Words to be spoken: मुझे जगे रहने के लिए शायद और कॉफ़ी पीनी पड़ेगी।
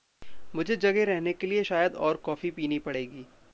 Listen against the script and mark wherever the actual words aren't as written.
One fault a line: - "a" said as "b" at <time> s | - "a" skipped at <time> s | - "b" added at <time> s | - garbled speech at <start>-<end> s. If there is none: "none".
none